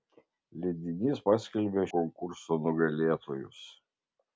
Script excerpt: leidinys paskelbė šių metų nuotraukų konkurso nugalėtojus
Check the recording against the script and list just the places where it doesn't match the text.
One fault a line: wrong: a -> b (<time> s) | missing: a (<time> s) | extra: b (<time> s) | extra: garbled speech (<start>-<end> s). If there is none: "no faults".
missing: šių metų nuotraukų (1.8 s)